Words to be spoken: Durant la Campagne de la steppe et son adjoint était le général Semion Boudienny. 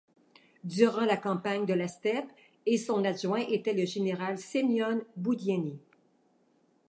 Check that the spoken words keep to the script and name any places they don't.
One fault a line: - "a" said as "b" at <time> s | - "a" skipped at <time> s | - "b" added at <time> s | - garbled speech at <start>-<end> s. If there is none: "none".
none